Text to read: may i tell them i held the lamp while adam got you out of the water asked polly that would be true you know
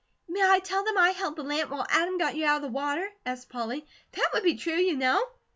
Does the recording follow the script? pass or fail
pass